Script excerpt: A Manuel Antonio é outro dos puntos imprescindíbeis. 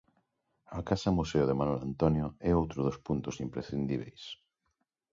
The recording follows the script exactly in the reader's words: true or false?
false